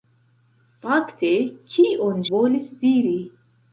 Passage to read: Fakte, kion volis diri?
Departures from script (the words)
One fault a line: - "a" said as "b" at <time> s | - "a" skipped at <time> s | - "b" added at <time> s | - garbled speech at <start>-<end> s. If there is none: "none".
none